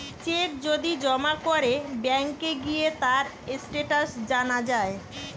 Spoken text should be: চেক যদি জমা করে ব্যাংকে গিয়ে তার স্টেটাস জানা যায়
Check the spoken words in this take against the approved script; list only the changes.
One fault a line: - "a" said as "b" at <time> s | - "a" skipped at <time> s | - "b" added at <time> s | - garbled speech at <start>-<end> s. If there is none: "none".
none